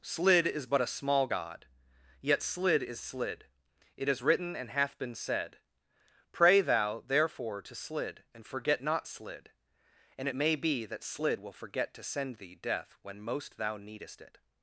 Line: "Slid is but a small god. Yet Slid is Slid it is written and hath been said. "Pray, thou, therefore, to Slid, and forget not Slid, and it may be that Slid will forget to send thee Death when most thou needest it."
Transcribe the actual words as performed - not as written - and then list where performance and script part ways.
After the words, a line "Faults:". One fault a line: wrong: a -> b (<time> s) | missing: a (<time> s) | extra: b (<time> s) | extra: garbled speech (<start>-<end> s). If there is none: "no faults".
"Slid is but a small god. Yet Slid is Slid it is written and hath been said. "Pray, thou, therefore, to Slid, and forget not Slid, and it may be that Slid will forget to send thee Death when most thou needest it."
Faults:
no faults